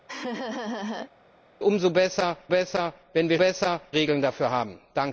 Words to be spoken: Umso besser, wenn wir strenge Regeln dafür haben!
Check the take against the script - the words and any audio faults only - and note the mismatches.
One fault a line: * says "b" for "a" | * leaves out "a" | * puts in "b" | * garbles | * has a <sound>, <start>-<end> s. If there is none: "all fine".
* has a laugh, 0.1-1.1 s
* puts in "besser"
* says "besser" for "strenge"